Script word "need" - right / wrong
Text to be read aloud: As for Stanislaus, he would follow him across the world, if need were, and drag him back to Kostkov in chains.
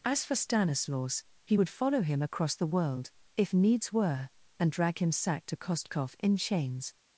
wrong